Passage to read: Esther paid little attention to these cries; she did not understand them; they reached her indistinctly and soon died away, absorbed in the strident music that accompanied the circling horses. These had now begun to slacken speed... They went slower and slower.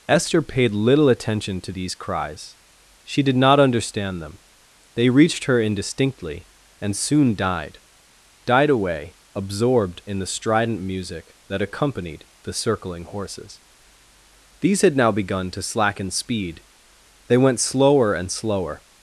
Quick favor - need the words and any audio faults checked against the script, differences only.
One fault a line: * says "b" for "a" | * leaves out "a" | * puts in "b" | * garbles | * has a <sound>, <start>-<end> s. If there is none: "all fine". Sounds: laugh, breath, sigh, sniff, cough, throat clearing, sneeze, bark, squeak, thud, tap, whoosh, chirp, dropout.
* puts in "died"